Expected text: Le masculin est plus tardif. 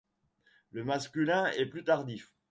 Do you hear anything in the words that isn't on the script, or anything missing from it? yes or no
no